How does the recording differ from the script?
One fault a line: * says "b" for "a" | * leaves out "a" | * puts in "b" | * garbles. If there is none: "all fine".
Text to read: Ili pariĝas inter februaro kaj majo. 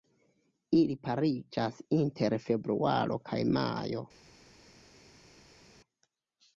all fine